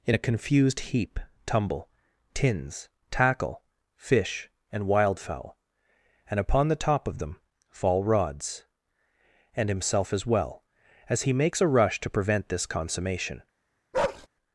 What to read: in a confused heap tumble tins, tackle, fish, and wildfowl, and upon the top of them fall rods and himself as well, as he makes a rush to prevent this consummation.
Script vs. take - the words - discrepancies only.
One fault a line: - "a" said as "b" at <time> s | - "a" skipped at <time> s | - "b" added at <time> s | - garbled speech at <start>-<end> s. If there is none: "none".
none